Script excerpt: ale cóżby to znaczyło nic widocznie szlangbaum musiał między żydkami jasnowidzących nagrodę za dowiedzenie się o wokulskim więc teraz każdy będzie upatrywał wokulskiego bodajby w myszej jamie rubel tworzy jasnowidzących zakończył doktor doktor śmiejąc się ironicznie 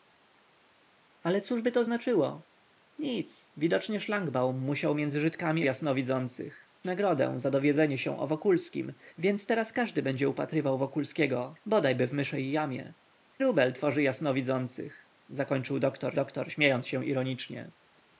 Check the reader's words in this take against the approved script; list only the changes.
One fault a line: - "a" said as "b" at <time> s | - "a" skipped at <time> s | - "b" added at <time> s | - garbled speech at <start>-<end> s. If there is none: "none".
none